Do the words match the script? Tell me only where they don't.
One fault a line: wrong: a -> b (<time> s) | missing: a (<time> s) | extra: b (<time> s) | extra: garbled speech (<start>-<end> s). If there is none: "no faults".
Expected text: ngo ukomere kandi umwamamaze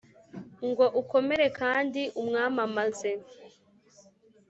no faults